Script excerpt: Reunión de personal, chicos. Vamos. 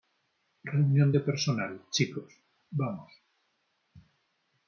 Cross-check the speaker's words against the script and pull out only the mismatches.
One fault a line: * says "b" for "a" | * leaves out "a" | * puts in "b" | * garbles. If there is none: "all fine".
all fine